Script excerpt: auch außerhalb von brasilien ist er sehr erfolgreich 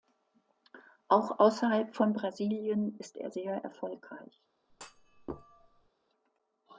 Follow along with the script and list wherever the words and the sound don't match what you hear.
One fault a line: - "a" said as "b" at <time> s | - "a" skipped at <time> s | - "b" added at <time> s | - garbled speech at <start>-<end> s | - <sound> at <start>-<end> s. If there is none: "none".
- thud at 4.7-5.9 s